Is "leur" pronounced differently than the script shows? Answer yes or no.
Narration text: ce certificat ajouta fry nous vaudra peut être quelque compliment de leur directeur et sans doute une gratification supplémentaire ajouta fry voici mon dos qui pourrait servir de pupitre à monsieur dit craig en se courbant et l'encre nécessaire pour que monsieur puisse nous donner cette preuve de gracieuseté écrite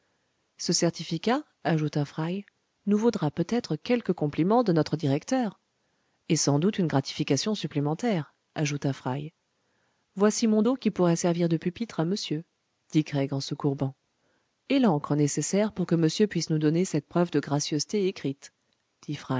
yes